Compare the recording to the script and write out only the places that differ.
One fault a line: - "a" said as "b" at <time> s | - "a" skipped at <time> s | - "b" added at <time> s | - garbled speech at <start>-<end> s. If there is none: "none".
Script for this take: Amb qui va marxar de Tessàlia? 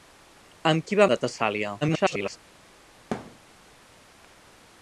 - "marxar" skipped at 1.1 s
- garbled speech at 1.8-2.4 s